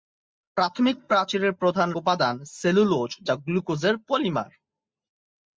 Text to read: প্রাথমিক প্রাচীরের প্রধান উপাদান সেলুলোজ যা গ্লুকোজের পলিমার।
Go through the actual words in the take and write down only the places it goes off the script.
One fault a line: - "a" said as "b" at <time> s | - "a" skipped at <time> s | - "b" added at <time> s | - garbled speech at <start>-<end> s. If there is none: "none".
none